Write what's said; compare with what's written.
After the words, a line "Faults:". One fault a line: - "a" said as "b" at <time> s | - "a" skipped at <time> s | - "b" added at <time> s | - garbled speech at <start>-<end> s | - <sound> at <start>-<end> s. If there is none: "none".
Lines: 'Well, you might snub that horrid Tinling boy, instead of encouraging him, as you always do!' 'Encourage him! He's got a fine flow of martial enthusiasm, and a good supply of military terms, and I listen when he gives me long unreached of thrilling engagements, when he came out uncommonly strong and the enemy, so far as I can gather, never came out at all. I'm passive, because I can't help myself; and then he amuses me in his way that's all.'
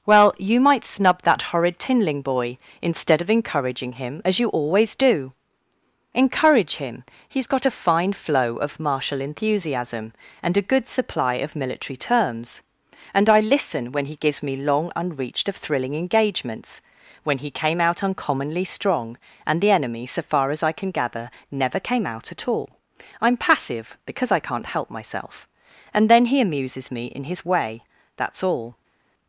'Well, you might snub that horrid Tinling boy, instead of encouraging him, as you always do!' 'Encourage him! He's got a fine flow of martial enthusiasm, and a good supply of military terms, and I listen when he gives me long unreached of thrilling engagements, when he came out uncommonly strong and the enemy, so far as I can gather, never came out at all. I'm passive, because I can't help myself; and then he amuses me in his way that's all.'
Faults:
none